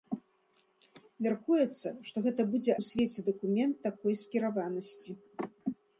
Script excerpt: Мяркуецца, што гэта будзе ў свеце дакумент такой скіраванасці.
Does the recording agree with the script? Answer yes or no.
yes